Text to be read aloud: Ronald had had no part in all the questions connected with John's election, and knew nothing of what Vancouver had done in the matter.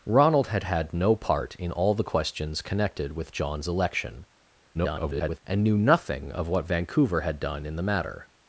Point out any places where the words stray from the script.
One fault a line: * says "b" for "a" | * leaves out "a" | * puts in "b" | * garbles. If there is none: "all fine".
* garbles